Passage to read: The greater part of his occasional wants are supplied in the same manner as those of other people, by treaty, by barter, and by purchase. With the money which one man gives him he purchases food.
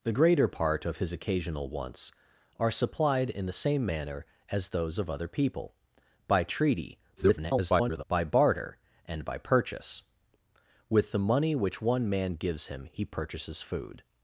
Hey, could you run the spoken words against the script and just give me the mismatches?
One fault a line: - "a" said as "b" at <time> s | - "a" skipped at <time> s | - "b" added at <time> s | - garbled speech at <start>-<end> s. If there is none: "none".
- garbled speech at 7.2-8.0 s